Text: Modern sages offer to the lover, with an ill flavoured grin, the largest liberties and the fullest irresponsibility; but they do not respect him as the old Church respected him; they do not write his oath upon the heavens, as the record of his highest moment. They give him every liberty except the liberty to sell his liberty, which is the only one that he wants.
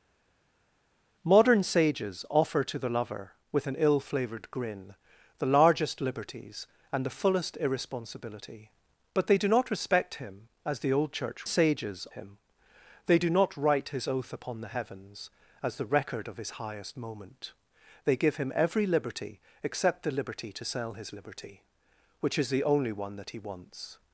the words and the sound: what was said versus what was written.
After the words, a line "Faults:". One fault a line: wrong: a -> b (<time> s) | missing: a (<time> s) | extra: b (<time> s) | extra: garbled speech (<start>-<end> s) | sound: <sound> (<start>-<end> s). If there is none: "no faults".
Modern sages offer to the lover, with an ill flavoured grin, the largest liberties and the fullest irresponsibility; but they do not respect him as the old Church sages him; they do not write his oath upon the heavens, as the record of his highest moment. They give him every liberty except the liberty to sell his liberty, which is the only one that he wants.
Faults:
wrong: respected -> sages (11.5 s)